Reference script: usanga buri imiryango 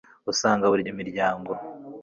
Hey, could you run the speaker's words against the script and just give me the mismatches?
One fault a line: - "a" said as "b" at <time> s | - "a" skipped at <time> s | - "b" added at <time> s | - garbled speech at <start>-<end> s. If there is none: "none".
none